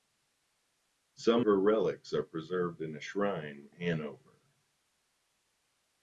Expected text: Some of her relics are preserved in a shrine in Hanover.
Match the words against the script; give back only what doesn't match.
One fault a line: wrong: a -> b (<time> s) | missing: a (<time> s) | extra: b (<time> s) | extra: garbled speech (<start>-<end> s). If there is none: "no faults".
missing: of (1.4 s)
missing: in (3.7 s)